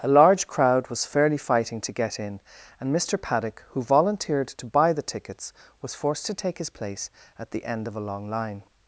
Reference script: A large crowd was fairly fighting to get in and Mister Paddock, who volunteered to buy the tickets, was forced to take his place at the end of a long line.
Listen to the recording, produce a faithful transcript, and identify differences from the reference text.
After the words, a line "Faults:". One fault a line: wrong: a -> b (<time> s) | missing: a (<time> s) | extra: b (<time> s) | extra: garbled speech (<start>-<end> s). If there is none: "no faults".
A large crowd was fairly fighting to get in and Mister Paddock, who volunteered to buy the tickets, was forced to take his place at the end of a long line.
Faults:
no faults